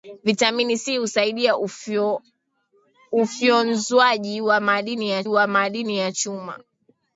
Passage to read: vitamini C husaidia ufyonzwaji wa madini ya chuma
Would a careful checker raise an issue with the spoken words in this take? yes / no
yes